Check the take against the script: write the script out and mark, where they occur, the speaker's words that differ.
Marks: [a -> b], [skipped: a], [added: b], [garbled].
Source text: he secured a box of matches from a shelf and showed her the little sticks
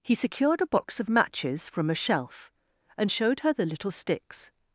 he secured a box of matches from a shelf and showed her the little sticks